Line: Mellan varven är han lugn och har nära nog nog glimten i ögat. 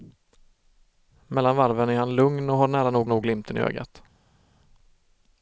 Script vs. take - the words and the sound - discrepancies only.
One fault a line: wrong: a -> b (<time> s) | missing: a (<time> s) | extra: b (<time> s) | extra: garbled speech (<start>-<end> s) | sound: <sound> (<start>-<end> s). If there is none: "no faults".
no faults